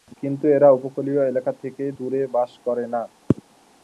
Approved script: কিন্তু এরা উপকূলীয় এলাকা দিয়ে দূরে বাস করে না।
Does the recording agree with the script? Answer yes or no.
no